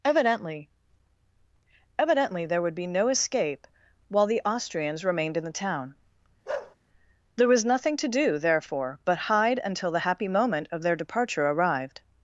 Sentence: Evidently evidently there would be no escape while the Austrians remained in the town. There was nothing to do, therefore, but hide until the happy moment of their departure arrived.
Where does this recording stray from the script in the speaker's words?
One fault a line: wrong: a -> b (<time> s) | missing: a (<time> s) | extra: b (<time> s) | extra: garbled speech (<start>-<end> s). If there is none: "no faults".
no faults